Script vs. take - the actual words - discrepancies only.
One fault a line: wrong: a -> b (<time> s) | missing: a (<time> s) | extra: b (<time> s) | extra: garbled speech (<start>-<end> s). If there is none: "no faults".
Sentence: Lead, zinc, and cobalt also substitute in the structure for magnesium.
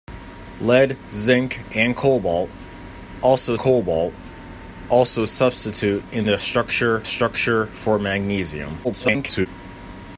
extra: cobalt also (3.6 s)
extra: structure (7.0 s)
extra: garbled speech (8.8-9.5 s)